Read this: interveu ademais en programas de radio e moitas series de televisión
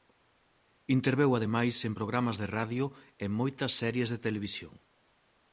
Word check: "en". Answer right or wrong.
right